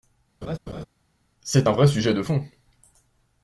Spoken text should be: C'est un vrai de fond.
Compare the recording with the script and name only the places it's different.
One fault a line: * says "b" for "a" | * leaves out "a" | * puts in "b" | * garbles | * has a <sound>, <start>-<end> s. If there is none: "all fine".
* has a laugh, 0.4-0.8 s
* puts in "sujet"